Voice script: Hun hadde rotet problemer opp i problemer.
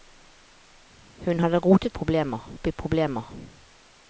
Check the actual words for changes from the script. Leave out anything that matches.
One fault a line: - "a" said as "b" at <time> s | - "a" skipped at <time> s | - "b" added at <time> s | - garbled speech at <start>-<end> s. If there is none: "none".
none